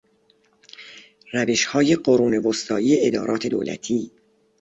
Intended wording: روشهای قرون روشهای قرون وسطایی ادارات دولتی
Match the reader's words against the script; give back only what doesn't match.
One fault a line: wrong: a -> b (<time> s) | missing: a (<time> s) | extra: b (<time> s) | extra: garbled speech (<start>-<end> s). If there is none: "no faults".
missing: روشهای قرون (2.4 s)